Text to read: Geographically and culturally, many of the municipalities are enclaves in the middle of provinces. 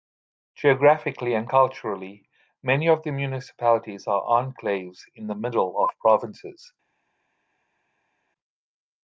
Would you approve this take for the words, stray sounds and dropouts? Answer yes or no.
yes